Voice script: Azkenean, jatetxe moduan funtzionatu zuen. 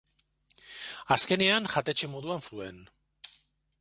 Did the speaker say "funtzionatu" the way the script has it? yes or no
no